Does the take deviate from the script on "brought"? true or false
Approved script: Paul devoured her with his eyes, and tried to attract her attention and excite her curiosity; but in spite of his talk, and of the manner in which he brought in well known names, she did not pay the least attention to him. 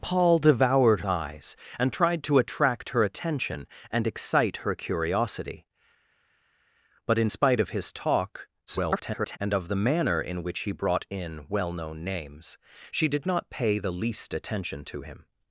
false